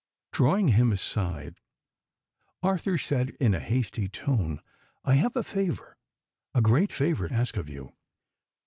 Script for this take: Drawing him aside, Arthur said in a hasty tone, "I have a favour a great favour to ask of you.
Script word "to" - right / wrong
wrong